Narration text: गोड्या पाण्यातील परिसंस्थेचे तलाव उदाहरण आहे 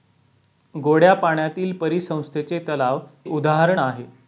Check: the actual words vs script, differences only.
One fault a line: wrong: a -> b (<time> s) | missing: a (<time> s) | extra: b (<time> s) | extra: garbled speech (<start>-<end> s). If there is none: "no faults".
no faults